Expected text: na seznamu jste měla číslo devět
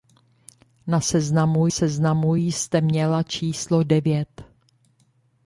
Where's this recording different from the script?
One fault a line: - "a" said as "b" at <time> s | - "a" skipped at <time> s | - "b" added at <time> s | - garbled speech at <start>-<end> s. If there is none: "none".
- "seznamu" added at 1.7 s